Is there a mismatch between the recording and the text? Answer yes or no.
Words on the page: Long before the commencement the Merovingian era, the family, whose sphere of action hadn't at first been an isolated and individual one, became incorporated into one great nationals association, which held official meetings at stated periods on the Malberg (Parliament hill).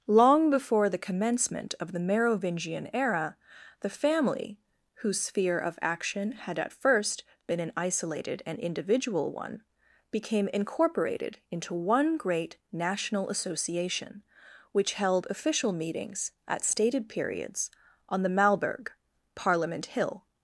yes